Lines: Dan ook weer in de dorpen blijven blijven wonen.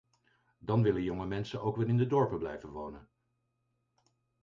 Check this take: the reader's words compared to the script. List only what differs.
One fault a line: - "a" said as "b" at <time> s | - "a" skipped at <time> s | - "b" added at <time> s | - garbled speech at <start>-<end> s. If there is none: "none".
- "willen jonge mensen" added at 0.8 s
- "blijven" skipped at 2.7 s